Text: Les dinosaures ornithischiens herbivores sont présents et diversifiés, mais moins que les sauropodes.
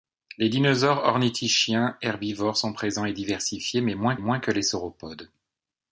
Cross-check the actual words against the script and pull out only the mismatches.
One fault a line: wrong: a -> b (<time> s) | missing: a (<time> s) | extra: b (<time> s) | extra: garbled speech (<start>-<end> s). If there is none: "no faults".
extra: moins (4.2 s)